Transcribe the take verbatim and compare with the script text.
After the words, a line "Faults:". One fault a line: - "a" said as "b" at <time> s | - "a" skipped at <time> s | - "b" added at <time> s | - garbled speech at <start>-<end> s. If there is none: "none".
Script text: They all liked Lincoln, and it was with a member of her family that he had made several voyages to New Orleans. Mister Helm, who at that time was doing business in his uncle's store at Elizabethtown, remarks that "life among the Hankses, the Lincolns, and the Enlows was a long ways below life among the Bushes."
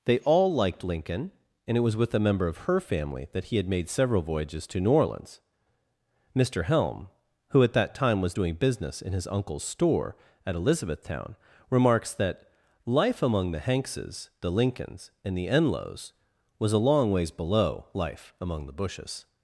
They all liked Lincoln, and it was with a member of her family that he had made several voyages to New Orleans. Mister Helm, who at that time was doing business in his uncle's store at Elizabethtown, remarks that "life among the Hankses, the Lincolns, and the Enlows was a long ways below life among the Bushes."
Faults:
none